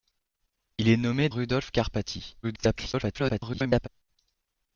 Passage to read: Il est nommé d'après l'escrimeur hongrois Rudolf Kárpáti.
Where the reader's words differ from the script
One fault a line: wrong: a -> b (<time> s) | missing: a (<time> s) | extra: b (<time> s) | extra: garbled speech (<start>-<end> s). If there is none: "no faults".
missing: d'après l'escrimeur hongrois (1.3 s)
extra: garbled speech (2.4-3.9 s)